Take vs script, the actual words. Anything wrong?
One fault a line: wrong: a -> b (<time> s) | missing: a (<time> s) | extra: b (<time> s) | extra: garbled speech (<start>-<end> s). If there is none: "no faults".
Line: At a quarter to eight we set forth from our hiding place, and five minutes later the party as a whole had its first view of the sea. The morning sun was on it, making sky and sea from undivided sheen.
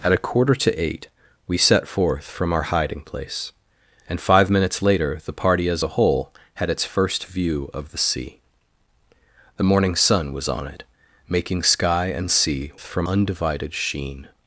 no faults